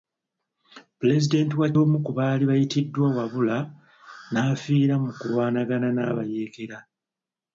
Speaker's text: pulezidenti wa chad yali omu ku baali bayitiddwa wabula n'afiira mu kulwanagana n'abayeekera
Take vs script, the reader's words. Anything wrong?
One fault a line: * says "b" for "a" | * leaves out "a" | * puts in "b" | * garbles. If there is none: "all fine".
* leaves out "chad yali"